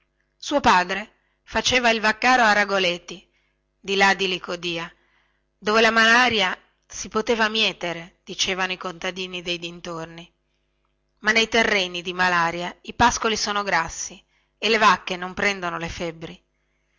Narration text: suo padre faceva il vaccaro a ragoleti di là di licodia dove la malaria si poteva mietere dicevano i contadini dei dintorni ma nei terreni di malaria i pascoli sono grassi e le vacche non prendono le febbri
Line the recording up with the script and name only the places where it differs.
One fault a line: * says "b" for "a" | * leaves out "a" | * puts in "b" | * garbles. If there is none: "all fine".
all fine